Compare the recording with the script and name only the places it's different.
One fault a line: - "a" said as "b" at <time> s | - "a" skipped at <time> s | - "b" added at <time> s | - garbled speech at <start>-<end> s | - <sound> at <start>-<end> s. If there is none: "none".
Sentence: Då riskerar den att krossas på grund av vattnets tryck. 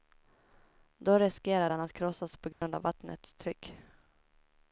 - dropout at 2.5-2.6 s